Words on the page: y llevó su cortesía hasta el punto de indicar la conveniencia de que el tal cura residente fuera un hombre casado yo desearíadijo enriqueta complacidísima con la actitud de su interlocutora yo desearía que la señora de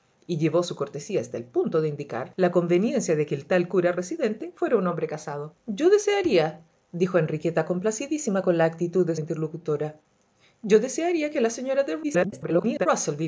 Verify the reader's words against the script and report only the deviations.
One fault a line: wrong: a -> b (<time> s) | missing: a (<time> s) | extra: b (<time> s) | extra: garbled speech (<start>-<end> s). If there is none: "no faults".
missing: su (9.2 s)
extra: garbled speech (12.0-12.9 s)